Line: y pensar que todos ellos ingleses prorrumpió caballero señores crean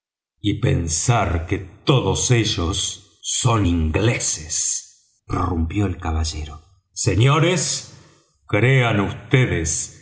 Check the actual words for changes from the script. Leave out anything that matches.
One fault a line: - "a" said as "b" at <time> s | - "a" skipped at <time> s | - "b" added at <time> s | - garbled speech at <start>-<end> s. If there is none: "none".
- "son" added at 3.2 s
- "el" added at 5.9 s